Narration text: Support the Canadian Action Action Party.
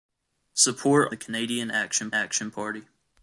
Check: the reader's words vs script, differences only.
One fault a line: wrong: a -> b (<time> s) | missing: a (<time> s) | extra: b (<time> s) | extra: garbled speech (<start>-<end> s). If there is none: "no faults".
no faults